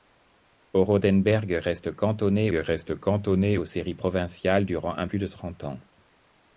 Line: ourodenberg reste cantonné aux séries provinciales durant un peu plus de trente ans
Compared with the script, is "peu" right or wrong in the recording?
wrong